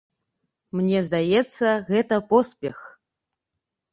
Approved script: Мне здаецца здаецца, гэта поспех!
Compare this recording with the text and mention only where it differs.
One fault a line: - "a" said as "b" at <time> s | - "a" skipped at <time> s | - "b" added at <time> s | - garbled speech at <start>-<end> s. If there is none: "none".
- "здаецца" skipped at 1.7 s